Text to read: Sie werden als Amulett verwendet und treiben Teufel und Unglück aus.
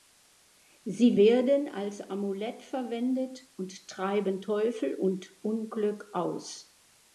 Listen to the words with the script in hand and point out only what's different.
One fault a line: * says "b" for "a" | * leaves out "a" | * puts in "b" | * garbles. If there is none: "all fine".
all fine